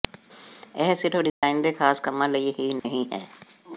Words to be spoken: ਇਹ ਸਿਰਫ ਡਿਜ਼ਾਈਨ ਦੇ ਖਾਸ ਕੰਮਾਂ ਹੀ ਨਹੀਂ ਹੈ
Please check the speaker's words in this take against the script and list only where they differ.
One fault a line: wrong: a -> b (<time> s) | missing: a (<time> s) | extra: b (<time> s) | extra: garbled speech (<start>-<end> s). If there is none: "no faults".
extra: ਲਈ (2.3 s)